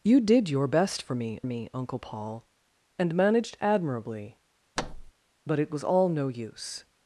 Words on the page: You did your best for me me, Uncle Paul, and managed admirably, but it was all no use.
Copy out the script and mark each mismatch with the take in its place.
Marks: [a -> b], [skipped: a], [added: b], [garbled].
You did your best for me me, Uncle Paul, and managed admirably, but it was all no use.